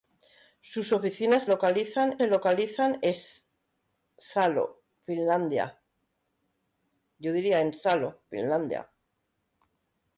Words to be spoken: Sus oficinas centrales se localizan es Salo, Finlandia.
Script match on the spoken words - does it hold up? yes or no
no